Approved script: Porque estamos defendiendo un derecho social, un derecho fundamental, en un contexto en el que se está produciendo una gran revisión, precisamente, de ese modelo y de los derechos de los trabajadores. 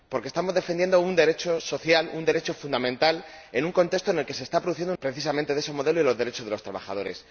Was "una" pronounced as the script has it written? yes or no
no